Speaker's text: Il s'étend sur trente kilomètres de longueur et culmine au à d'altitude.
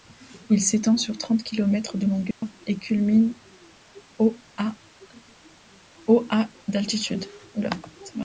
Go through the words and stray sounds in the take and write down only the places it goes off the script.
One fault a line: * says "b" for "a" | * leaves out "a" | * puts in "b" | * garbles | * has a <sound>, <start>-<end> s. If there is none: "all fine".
* has a dropout, 2.3-2.4 s